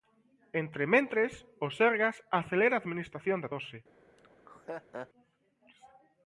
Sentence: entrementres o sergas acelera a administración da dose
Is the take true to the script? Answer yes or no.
yes